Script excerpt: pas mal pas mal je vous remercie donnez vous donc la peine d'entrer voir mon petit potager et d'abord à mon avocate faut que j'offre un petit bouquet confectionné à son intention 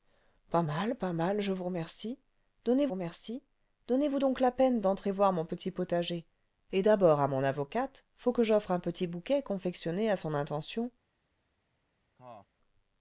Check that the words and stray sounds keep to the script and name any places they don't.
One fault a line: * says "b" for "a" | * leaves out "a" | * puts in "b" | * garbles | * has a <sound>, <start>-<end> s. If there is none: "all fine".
* puts in "remercie donnez"
* has a cough, 12.2-12.5 s